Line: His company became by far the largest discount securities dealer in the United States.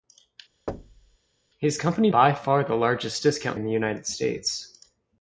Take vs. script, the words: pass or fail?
fail